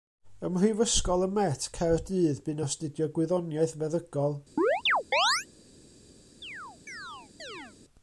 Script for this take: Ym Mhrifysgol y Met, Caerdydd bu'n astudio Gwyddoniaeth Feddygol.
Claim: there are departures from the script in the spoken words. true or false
false